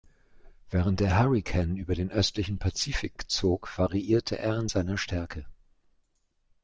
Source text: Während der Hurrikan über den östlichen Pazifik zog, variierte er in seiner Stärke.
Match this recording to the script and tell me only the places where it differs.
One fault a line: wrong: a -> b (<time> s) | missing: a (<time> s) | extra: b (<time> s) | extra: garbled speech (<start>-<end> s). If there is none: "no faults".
no faults